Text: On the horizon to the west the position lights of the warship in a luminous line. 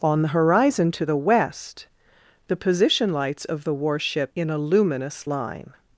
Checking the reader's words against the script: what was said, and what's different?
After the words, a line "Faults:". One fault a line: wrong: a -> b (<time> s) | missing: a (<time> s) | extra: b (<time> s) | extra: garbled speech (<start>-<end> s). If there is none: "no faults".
On the horizon to the west the position lights of the warship in a luminous line.
Faults:
no faults